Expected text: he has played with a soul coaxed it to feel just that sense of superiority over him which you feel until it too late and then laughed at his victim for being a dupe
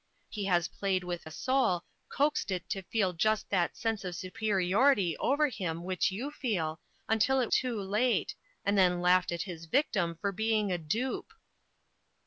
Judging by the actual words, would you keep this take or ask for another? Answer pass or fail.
pass